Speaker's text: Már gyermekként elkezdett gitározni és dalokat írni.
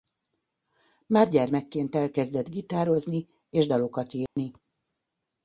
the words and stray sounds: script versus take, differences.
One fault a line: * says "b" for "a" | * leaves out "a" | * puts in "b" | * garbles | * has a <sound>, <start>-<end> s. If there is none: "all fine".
* has a dropout, 4.3-4.4 s